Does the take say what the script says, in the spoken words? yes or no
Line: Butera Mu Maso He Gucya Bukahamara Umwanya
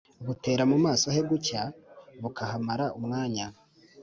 yes